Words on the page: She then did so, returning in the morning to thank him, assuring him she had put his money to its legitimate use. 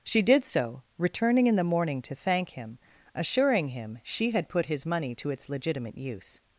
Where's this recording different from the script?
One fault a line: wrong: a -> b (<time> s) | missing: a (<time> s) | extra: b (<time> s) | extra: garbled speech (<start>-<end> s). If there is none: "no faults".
missing: then (0.2 s)